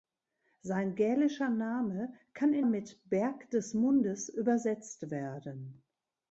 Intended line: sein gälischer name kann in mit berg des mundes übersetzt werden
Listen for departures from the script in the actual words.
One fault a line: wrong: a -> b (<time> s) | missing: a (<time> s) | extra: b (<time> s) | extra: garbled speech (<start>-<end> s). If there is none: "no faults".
no faults